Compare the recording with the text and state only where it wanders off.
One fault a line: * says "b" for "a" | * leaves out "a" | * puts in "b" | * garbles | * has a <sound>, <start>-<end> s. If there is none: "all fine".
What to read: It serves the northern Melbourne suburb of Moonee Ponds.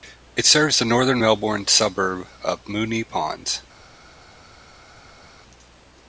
all fine